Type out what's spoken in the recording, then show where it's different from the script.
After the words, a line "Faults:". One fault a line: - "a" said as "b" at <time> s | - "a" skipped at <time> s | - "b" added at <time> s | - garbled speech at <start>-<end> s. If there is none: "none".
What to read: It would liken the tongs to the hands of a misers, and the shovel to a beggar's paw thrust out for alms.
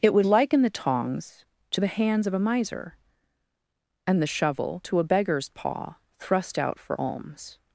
It would liken the tongs to the hands of a miser, and the shovel to a beggar's paw thrust out for alms.
Faults:
- "misers" said as "miser" at 2.4 s